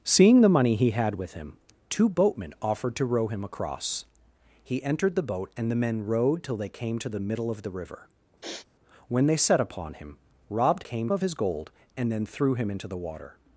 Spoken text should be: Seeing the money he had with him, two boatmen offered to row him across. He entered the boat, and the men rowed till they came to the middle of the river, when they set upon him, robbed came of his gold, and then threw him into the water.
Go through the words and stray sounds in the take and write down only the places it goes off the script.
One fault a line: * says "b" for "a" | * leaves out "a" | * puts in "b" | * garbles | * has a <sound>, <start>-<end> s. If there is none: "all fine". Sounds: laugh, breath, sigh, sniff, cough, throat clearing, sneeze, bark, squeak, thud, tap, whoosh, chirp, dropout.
* has a sniff, 8.4-8.7 s